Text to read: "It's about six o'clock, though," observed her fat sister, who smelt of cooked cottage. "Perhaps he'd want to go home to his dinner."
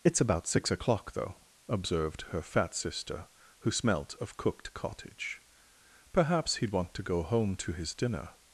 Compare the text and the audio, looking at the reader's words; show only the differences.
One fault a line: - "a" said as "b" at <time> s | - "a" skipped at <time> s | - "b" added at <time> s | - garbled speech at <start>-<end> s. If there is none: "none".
none